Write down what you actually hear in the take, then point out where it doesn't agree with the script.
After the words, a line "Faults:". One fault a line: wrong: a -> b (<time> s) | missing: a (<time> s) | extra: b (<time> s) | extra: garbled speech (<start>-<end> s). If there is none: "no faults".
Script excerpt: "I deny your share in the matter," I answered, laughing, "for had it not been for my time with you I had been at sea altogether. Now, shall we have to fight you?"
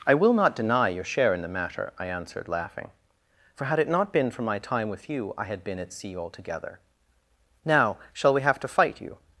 "I will not deny your share in the matter," I answered, laughing, "for had it not been for my time with you I had been at sea altogether. Now, shall we have to fight you?"
Faults:
extra: will not (0.1 s)